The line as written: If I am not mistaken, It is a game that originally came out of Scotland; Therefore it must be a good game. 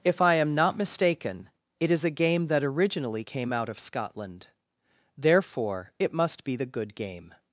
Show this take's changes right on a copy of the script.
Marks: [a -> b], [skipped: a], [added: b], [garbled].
If I am not mistaken, It is a game that originally came out of Scotland; Therefore it must be [a -> the] good game.